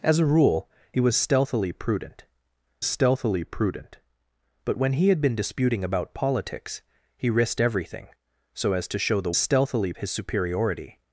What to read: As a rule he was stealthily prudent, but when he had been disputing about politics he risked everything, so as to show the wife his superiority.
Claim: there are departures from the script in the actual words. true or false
true